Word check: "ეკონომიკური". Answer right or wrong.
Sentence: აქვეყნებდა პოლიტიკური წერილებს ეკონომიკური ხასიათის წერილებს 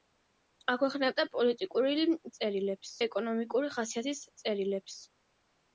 right